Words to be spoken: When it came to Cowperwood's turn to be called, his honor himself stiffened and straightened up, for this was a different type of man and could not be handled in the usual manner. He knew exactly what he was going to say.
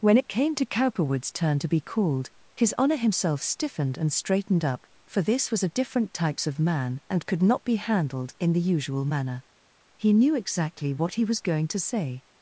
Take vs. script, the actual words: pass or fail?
fail